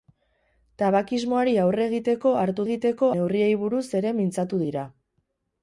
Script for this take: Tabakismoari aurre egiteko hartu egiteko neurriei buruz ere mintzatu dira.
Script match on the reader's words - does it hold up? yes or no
yes